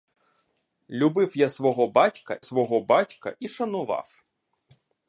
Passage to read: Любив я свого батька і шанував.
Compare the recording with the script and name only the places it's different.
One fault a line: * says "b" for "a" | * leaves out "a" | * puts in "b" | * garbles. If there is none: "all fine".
* puts in "свого батька"